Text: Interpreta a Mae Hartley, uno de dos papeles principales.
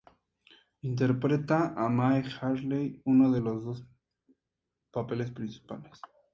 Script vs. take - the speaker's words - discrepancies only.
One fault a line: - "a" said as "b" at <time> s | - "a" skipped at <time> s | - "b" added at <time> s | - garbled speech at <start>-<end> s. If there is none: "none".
- "los" added at 3.4 s